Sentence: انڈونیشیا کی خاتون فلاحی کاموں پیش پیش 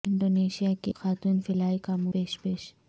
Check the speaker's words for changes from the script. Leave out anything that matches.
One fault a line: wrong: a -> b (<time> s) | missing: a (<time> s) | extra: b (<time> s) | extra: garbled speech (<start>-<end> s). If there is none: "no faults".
no faults